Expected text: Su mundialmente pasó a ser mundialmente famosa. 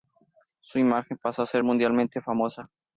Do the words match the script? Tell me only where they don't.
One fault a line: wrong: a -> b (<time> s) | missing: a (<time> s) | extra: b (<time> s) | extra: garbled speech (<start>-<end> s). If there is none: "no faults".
wrong: mundialmente -> imagen (0.8 s)